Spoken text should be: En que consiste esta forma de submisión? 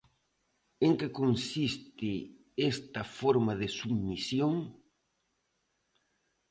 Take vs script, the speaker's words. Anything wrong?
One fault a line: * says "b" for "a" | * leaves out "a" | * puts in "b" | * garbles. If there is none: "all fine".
all fine